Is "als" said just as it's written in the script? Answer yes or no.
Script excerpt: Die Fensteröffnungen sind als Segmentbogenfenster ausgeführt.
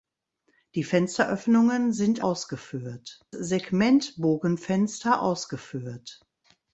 no